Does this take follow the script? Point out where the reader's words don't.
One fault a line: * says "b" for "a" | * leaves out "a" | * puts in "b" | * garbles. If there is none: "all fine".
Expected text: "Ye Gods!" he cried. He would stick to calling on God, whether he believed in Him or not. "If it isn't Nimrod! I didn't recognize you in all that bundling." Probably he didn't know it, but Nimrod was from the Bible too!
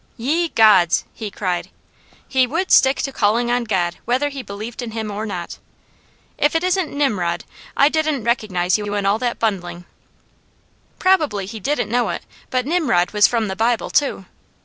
* puts in "you"